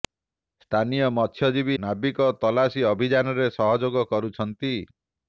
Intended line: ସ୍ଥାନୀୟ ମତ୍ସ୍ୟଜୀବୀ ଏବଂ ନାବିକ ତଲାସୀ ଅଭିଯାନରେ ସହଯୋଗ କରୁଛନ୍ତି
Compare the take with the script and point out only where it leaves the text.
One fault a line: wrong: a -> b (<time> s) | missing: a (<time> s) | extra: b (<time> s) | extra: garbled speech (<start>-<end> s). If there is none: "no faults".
missing: ଏବଂ (1.8 s)